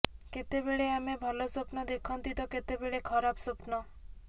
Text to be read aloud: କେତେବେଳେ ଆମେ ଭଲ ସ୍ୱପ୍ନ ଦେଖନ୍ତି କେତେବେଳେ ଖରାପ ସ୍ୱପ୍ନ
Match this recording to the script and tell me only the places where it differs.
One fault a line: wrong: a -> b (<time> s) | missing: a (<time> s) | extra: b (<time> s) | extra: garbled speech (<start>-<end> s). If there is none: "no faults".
extra: ତ (2.4 s)